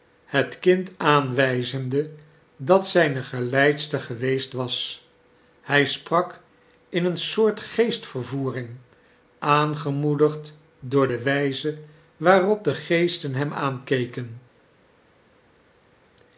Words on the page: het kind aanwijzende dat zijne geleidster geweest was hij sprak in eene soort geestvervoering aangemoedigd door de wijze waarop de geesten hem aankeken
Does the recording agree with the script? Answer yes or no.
yes